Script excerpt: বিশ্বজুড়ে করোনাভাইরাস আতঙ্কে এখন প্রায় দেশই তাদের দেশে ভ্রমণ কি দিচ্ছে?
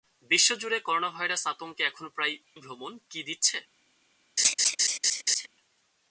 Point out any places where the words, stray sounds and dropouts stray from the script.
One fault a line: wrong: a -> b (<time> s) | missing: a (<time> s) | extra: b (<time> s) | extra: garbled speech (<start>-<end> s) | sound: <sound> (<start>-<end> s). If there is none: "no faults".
missing: দেশই তাদের দেশে (2.4 s)
sound: laugh (4.4-5.5 s)